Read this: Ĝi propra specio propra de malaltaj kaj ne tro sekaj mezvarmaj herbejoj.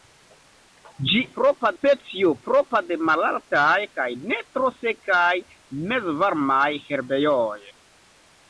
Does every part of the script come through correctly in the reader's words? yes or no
yes